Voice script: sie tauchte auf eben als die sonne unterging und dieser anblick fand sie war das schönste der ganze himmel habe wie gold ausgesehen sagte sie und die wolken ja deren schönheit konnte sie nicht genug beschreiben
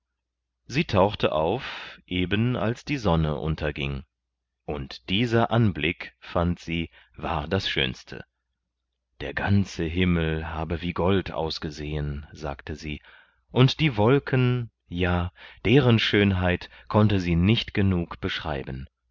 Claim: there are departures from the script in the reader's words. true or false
false